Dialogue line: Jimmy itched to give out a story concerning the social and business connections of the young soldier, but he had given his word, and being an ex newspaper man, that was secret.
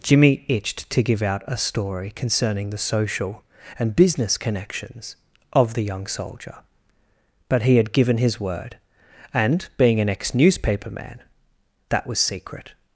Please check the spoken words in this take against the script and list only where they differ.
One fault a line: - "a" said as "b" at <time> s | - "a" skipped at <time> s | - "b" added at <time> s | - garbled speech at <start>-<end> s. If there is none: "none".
none